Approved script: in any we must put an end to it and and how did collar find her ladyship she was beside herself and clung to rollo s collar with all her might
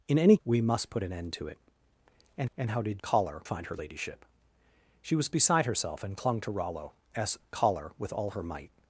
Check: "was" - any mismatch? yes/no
no